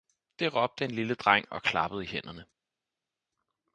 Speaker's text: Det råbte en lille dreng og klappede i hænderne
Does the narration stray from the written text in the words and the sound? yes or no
no